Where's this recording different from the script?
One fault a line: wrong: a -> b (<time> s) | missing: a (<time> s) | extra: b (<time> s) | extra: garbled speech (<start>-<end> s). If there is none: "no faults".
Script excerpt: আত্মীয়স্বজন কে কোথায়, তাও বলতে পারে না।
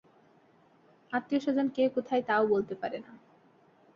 no faults